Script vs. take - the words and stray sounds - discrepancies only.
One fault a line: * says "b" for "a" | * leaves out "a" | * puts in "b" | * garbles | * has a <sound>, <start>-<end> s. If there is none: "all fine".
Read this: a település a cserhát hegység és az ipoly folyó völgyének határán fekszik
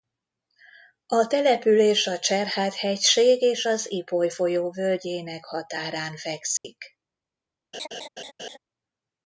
* has a dropout, 6.6-6.6 s
* has a laugh, 7.7-8.6 s